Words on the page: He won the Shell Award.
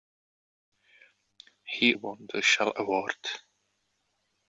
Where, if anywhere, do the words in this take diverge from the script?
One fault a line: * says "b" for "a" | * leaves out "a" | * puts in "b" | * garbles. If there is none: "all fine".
all fine